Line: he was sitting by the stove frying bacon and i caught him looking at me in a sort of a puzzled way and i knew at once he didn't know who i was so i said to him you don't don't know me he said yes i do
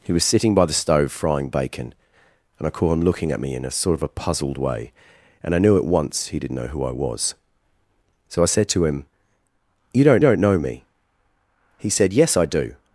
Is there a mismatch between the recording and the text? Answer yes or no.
no